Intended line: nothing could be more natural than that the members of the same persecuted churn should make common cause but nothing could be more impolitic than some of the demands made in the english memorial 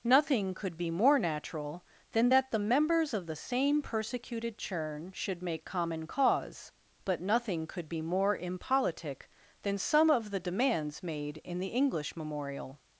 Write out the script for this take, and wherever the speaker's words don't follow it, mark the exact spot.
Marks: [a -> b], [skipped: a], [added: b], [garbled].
nothing could be more natural than that the members of the same persecuted churn should make common cause but nothing could be more impolitic than some of the demands made in the english memorial